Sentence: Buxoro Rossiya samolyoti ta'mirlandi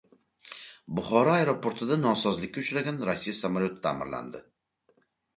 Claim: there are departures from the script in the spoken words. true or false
true